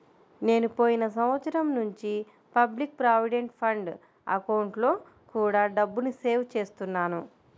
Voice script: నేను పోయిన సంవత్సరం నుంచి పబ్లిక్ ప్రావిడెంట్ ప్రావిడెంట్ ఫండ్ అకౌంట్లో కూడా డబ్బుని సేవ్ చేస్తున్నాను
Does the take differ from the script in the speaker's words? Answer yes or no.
yes